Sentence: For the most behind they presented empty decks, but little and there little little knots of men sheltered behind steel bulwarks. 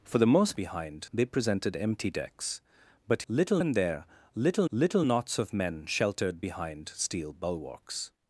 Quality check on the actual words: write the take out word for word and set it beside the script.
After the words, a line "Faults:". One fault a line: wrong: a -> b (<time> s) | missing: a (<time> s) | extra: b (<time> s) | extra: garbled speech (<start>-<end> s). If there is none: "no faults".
For the most behind they presented empty decks, but little and there little little knots of men sheltered behind steel bulwarks.
Faults:
no faults